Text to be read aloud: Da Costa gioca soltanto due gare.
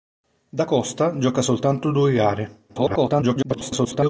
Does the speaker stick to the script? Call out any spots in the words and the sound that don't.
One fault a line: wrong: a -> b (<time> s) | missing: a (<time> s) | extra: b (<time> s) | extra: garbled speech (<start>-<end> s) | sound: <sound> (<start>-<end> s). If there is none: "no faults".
extra: garbled speech (2.7-4.1 s)